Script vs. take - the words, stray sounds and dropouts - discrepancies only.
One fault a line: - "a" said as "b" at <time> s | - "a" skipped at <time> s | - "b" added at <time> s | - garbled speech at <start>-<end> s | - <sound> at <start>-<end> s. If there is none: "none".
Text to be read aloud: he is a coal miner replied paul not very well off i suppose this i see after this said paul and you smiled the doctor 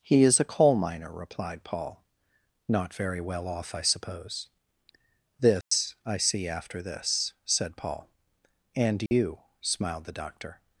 - dropout at 5.6-5.7 s
- dropout at 9.1-9.1 s